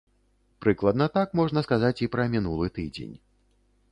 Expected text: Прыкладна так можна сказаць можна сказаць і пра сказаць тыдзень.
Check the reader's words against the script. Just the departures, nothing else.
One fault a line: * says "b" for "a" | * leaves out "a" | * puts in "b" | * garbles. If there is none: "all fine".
* leaves out "можна сказаць"
* says "мінулы" for "сказаць"